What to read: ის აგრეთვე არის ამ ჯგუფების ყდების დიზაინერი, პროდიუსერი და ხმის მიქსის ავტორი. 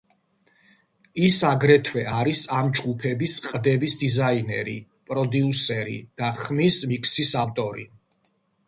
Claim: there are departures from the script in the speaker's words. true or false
false